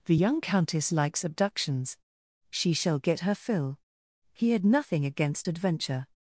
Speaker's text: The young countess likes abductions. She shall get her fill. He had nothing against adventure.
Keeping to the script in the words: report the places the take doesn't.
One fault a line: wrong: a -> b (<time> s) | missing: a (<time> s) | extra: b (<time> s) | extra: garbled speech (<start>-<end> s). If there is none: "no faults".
no faults